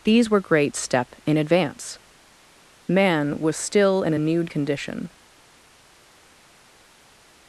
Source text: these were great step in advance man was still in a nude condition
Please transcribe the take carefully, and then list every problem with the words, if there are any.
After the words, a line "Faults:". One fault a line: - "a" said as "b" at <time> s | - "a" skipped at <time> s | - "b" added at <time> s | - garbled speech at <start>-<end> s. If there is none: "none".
these were great step in advance man was still in a nude condition
Faults:
none